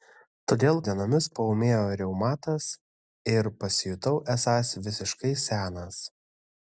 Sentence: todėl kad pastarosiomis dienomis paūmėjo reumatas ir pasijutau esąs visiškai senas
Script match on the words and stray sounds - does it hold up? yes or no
no